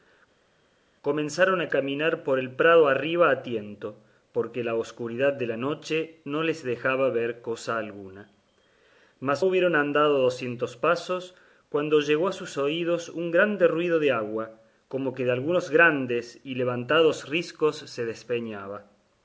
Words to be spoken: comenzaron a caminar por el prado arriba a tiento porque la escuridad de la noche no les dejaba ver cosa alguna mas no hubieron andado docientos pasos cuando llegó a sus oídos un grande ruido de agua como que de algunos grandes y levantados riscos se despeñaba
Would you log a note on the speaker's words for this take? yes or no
yes